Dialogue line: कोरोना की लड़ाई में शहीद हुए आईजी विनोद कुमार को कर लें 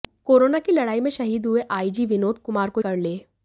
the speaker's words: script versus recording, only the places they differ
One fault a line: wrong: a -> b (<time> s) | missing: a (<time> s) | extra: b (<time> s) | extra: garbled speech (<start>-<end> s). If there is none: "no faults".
no faults